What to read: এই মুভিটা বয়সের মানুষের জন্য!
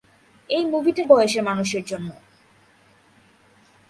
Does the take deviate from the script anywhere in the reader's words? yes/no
no